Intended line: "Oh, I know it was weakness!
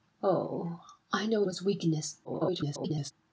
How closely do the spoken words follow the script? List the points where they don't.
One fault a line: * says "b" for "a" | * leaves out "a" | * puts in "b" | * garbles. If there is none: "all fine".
* leaves out "it"
* garbles